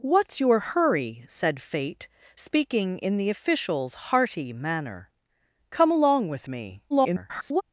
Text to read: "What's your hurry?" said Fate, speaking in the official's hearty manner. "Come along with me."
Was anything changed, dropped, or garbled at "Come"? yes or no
no